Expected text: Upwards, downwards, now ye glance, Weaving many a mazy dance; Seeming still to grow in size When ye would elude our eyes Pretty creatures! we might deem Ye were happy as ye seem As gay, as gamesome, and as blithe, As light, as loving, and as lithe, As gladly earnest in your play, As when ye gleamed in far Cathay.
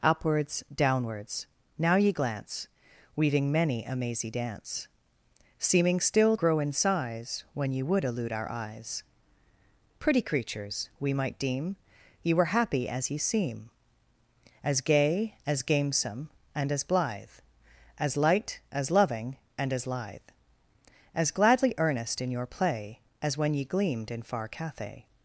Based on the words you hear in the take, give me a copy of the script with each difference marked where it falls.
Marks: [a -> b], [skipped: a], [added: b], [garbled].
Upwards, downwards, now ye glance, Weaving many a mazy dance; Seeming still [skipped: to] grow in size When ye would elude our eyes Pretty creatures! we might deem Ye were happy as ye seem As gay, as gamesome, and as blithe, As light, as loving, and as lithe, As gladly earnest in your play, As when ye gleamed in far Cathay.